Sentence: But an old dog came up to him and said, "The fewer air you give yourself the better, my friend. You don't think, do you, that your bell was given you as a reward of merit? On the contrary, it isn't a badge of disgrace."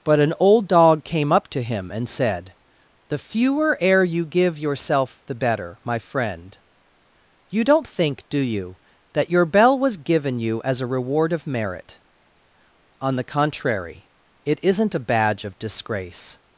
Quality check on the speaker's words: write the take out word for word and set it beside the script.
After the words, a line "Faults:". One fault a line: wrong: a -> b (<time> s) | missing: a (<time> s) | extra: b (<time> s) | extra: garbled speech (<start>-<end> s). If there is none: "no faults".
But an old dog came up to him and said, "The fewer air you give yourself the better, my friend. You don't think, do you, that your bell was given you as a reward of merit? On the contrary, it isn't a badge of disgrace."
Faults:
no faults